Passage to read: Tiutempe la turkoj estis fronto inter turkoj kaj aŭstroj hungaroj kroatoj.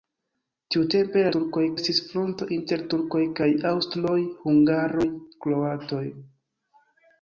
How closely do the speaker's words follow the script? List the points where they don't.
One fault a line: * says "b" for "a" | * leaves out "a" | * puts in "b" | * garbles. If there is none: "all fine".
all fine